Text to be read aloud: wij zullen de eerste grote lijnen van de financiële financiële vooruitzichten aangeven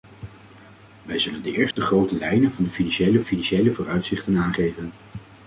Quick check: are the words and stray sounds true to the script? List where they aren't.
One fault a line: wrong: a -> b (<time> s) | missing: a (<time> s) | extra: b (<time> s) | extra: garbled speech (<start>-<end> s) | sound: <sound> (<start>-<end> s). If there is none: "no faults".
sound: dropout (1.7-1.8 s)